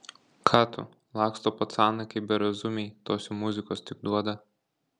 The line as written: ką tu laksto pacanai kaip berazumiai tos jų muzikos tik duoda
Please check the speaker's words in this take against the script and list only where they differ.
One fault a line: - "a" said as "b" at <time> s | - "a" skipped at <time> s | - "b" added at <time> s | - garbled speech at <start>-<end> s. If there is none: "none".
none